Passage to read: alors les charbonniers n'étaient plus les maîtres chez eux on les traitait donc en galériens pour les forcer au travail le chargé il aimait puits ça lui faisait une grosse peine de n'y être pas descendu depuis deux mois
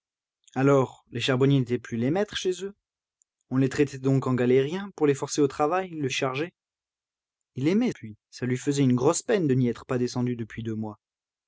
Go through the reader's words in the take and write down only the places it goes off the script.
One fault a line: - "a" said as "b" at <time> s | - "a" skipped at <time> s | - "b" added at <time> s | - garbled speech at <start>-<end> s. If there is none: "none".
none